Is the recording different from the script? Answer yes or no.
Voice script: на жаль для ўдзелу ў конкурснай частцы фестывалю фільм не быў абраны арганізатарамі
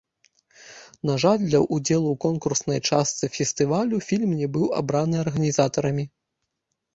no